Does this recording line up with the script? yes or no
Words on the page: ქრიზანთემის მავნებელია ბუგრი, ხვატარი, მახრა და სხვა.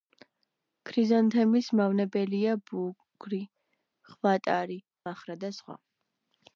yes